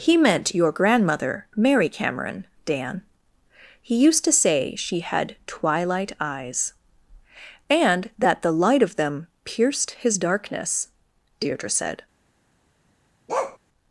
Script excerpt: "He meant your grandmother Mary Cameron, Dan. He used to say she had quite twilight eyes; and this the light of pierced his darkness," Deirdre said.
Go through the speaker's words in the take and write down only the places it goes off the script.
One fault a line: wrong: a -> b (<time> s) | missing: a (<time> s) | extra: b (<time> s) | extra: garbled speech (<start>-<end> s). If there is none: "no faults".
missing: quite (5.3 s)
wrong: this -> that (8.2 s)
extra: them (8.9 s)